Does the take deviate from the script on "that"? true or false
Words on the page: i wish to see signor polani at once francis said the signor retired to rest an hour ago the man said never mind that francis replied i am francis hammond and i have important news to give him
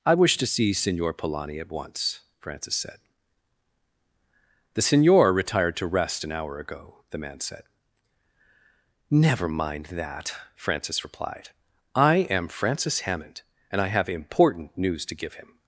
false